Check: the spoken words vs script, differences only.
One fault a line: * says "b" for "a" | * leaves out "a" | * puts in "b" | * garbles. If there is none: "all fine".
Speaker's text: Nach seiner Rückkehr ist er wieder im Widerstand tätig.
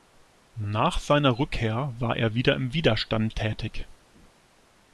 * says "war" for "ist"